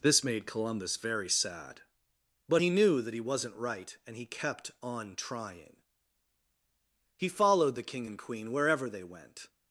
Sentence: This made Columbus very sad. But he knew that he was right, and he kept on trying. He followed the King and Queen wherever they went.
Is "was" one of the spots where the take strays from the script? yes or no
yes